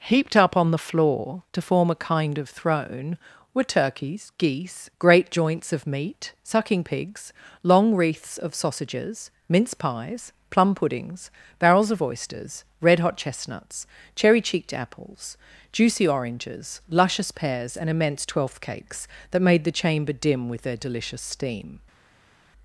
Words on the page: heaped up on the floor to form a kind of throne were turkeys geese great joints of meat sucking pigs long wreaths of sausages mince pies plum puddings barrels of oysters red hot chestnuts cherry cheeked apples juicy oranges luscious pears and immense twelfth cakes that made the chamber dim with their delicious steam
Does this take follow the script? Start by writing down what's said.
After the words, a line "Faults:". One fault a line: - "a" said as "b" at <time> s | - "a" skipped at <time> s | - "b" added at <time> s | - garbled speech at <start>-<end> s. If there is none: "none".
heaped up on the floor to form a kind of throne were turkeys geese great joints of meat sucking pigs long wreaths of sausages mince pies plum puddings barrels of oysters red hot chestnuts cherry cheeked apples juicy oranges luscious pears and immense twelfth cakes that made the chamber dim with their delicious steam
Faults:
none